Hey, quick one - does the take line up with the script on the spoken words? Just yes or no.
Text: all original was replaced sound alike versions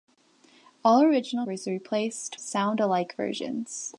yes